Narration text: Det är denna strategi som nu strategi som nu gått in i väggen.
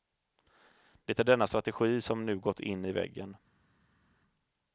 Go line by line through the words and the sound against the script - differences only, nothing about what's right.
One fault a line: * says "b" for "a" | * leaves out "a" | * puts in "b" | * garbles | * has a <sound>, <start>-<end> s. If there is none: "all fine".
* leaves out "strategi som nu"